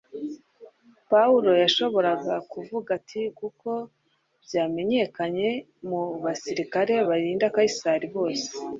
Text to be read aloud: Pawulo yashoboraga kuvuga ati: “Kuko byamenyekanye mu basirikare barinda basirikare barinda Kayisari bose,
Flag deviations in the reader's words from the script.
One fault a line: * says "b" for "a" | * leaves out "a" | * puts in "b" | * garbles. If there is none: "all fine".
* leaves out "basirikare barinda"